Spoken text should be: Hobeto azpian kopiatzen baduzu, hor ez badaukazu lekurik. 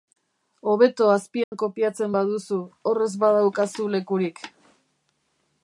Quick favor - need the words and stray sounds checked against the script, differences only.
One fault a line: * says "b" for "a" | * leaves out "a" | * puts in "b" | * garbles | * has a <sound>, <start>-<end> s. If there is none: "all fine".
* has a dropout, 1.4-1.5 s